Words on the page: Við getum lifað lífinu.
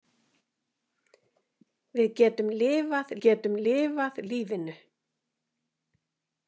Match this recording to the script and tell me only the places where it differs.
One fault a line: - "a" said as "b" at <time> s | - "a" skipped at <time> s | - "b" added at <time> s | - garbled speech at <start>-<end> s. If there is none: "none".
- "getum lifað" added at 3.3 s